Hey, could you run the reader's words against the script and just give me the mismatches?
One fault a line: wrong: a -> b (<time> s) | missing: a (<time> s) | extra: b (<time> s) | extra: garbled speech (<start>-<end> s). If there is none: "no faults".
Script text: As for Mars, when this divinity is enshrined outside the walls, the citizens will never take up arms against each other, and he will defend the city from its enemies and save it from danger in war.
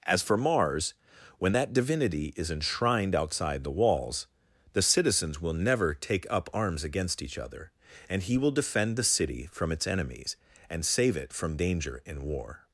wrong: this -> that (1.5 s)